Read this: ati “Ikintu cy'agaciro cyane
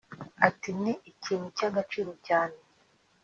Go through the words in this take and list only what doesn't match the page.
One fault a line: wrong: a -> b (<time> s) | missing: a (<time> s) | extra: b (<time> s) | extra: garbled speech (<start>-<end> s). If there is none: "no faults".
extra: Ni (0.8 s)